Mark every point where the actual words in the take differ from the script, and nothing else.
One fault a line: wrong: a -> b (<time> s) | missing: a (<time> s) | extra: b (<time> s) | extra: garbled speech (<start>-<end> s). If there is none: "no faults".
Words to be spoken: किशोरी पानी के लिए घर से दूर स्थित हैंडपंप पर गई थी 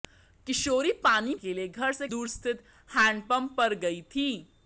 no faults